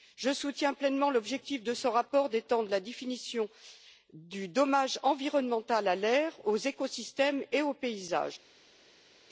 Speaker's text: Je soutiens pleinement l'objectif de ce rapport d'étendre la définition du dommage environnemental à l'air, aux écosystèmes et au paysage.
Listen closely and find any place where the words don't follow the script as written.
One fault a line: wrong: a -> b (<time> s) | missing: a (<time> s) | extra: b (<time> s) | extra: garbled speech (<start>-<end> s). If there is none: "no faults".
no faults